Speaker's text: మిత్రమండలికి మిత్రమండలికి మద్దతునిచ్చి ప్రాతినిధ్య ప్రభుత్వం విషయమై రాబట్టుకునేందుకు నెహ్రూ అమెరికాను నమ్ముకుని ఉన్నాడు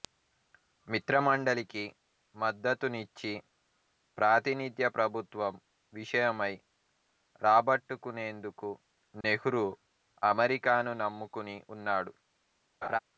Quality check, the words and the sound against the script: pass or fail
fail